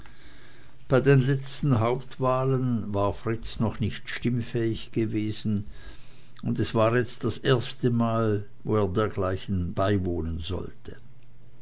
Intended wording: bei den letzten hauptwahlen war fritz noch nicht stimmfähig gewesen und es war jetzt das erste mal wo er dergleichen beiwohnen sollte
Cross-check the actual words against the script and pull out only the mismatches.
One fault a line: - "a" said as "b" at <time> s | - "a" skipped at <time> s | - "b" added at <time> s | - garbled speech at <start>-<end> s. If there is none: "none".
none